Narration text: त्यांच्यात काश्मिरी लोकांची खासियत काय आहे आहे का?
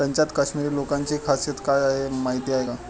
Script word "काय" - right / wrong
right